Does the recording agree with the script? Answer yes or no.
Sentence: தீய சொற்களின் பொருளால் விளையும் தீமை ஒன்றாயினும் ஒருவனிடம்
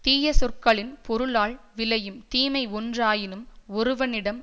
yes